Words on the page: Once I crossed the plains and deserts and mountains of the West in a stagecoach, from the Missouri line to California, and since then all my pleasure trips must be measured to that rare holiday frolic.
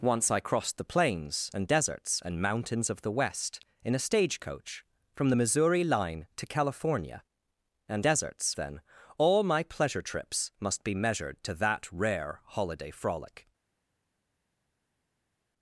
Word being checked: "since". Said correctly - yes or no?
no